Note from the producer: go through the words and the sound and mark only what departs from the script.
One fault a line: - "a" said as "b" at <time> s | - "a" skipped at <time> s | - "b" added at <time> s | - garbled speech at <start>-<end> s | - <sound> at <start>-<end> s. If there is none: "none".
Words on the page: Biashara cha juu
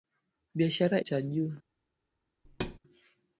- thud at 2.4-2.8 s